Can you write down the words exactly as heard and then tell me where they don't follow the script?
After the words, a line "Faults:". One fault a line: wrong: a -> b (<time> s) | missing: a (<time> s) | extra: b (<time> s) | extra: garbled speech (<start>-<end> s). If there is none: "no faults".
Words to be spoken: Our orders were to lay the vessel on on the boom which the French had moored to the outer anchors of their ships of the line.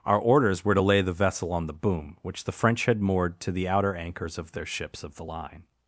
Our orders were to lay the vessel on the boom which the French had moored to the outer anchors of their ships of the line.
Faults:
missing: on (1.7 s)